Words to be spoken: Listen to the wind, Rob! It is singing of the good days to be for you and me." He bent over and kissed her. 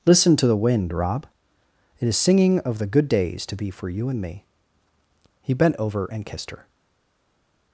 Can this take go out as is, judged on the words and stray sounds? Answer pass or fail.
pass